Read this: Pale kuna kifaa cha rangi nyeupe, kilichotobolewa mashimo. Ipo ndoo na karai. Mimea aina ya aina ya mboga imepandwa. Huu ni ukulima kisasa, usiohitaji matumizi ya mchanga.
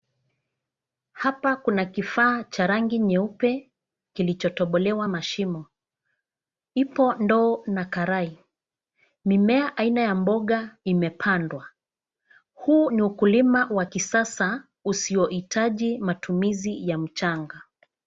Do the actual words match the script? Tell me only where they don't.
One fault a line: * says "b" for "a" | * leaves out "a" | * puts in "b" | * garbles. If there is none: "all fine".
* says "Hapa" for "Pale"
* leaves out "aina ya"
* puts in "wa"